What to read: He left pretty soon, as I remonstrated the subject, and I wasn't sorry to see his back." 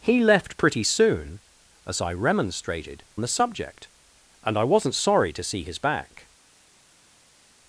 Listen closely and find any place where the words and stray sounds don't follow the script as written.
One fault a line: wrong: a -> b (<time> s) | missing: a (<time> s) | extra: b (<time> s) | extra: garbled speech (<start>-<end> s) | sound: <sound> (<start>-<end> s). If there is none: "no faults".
no faults